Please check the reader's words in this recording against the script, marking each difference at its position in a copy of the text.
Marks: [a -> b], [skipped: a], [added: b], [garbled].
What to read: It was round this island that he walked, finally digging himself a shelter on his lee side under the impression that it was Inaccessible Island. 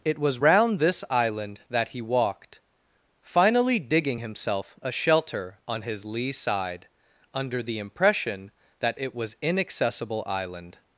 It was round this island that he walked, finally digging himself a shelter on his lee side under the impression that it was Inaccessible Island.